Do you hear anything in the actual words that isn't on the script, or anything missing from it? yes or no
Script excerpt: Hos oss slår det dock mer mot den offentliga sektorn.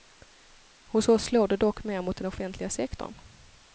no